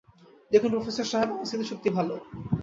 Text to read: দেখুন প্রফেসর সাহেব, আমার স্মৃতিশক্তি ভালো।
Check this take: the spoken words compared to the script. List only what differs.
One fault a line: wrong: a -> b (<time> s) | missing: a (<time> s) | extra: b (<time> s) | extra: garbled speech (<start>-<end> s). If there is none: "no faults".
no faults